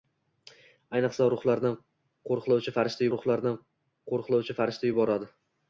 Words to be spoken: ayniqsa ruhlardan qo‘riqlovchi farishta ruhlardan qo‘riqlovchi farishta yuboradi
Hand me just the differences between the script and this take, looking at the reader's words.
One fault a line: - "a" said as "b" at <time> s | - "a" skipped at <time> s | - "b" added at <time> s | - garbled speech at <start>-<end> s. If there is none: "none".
none